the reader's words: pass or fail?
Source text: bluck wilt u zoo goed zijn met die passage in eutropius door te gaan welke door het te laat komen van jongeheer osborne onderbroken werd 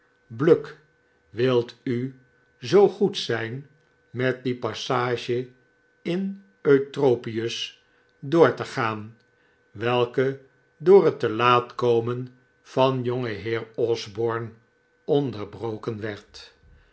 pass